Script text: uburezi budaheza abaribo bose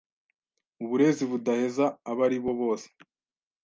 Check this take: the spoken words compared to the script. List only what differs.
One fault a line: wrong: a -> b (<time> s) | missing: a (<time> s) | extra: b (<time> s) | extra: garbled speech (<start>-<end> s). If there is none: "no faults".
no faults